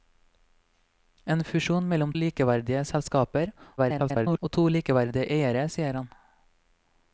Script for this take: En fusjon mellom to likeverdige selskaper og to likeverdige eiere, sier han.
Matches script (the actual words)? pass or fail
fail